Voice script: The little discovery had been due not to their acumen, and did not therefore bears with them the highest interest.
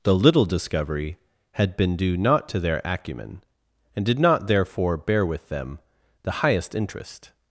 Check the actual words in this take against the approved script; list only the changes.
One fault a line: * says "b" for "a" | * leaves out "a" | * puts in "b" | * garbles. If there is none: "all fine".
* says "bear" for "bears"